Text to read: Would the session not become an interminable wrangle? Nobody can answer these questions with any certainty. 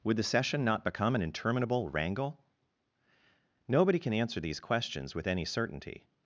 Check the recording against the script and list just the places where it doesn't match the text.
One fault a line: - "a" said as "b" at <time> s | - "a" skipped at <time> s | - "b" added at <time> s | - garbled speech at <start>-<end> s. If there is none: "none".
none